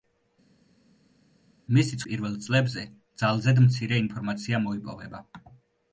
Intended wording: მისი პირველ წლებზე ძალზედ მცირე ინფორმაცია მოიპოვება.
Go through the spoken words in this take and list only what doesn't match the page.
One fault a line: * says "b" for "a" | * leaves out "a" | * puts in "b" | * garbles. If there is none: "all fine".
all fine